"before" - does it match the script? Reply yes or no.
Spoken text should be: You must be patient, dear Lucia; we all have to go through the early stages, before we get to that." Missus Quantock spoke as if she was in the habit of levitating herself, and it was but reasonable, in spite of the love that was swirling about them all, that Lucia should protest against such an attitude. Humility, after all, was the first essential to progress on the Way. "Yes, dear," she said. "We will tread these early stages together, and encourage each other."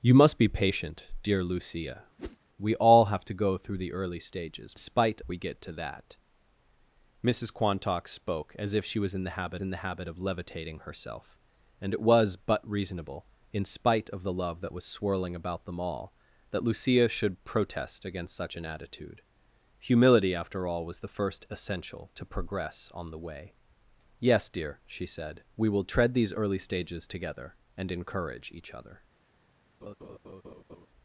no